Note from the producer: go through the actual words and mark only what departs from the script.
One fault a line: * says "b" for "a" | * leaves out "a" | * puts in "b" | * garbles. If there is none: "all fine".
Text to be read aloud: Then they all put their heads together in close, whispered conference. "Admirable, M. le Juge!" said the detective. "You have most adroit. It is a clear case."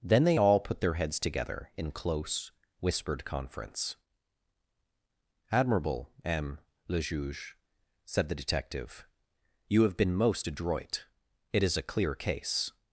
* puts in "been"